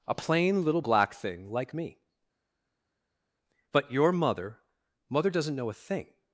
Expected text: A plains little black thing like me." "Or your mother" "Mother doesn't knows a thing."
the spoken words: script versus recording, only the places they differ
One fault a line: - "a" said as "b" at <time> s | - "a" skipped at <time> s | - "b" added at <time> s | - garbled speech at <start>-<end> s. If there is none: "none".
- "plains" said as "plain" at 0.1 s
- "Or" said as "But" at 3.7 s
- "knows" said as "know" at 5.5 s